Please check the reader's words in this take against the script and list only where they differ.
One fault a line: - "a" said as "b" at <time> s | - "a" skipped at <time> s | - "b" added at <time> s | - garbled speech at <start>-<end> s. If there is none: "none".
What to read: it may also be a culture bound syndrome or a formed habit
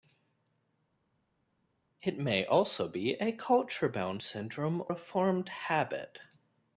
- "or" skipped at 4.8 s